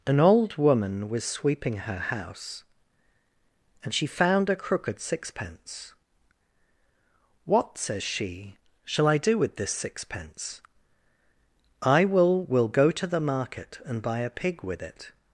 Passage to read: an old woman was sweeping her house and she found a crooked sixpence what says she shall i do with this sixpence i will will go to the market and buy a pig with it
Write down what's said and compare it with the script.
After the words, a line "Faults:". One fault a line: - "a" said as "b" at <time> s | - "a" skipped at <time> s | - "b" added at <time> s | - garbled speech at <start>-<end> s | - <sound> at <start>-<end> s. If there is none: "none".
an old woman was sweeping her house and she found a crooked sixpence what says she shall i do with this sixpence i will will go to the market and buy a pig with it
Faults:
none